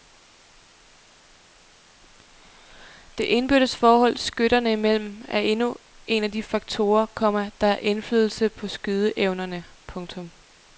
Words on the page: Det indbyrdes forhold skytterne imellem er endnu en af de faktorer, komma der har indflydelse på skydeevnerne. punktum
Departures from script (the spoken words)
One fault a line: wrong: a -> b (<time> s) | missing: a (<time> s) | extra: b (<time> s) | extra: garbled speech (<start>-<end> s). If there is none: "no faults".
no faults